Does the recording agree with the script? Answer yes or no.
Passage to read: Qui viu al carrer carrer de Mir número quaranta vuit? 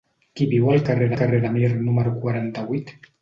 yes